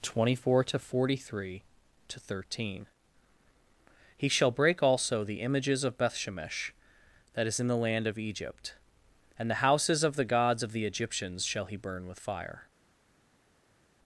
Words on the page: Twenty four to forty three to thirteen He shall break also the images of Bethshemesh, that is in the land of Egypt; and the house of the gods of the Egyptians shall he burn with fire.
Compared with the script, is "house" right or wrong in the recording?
wrong